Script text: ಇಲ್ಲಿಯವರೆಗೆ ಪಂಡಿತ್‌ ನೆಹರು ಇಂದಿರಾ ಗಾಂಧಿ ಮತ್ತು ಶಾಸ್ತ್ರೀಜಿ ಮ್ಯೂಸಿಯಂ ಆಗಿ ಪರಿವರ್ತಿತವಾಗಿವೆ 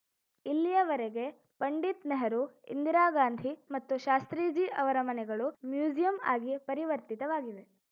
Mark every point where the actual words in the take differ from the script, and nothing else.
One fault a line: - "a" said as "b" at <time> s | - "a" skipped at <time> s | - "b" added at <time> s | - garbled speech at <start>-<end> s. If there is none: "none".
- "ಅವರ ಮನೆಗಳು" added at 4.8 s